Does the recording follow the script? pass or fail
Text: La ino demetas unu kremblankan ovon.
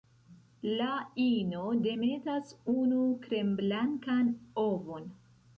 pass